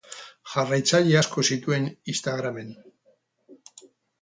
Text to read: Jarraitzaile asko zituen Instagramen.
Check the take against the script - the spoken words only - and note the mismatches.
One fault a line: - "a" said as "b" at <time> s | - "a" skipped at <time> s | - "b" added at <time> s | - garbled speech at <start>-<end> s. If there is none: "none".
none